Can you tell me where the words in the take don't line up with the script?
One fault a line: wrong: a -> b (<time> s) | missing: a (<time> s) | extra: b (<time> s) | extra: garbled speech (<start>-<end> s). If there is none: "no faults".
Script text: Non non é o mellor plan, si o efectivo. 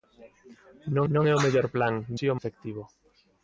no faults